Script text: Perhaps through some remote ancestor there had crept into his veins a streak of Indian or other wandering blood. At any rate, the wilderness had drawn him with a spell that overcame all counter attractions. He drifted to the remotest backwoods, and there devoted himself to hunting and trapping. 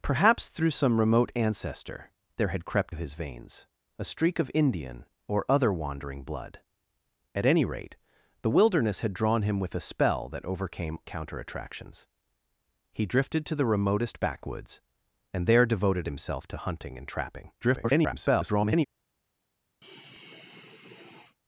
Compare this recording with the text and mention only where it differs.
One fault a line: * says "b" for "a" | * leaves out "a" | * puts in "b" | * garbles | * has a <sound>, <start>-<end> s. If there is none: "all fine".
* leaves out "into"
* leaves out "all"
* garbles
* has a sigh, 19.8-21.4 s